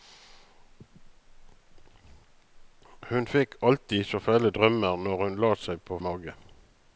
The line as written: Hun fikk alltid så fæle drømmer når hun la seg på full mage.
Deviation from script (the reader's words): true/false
true